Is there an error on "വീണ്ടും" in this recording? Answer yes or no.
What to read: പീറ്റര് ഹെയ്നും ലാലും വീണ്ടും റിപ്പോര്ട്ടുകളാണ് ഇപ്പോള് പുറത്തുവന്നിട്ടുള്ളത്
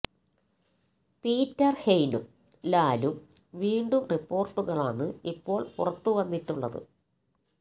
no